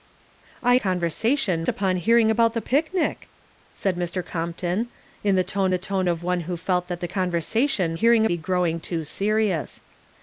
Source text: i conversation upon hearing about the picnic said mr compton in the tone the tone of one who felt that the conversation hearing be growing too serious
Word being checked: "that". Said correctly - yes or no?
yes